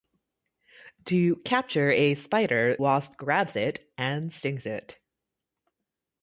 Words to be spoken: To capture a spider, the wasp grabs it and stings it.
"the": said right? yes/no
no